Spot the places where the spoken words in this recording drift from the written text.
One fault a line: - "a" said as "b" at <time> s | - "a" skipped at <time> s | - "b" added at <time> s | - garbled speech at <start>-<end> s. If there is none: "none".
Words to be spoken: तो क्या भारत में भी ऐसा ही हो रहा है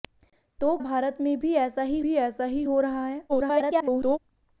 - "क्या" skipped at 0.8 s
- "भी ऐसा ही" added at 2.0 s
- garbled speech at 3.3-4.2 s